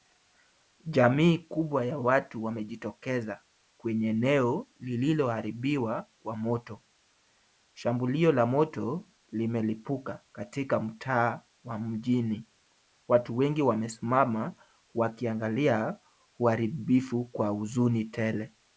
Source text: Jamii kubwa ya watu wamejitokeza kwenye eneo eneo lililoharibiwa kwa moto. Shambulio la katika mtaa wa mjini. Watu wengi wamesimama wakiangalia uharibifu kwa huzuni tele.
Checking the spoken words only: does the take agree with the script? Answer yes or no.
no